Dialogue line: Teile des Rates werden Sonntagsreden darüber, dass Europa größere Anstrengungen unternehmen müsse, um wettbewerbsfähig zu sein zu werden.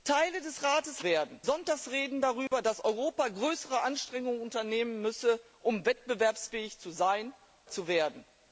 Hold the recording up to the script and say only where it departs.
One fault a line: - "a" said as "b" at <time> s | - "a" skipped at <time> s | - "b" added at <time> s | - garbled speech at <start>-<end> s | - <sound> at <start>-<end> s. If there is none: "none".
- dropout at 2.5-2.5 s